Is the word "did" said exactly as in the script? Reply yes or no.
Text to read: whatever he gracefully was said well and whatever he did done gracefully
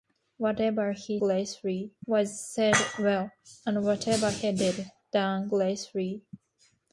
yes